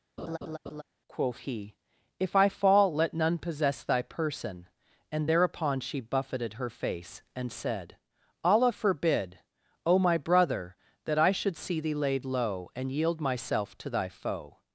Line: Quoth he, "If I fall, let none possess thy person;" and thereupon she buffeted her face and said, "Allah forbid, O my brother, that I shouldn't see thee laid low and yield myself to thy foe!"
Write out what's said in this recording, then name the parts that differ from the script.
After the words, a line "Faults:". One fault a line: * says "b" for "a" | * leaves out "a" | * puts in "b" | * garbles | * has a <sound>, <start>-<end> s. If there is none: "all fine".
Quoth he, "If I fall, let none possess thy person;" and thereupon she buffeted her face and said, "Allah forbid, O my brother, that I should see thee laid low and yield myself to thy foe!"
Faults:
* has a laugh, 0.2-0.8 s
* says "should" for "shouldn't"